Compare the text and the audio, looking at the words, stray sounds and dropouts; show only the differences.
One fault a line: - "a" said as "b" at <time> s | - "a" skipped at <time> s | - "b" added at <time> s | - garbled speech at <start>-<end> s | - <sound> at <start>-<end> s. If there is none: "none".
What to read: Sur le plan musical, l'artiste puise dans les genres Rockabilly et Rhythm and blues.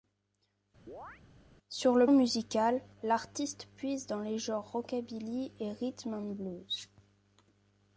- chirp at 0.9-1.2 s
- "plan" skipped at 2.1 s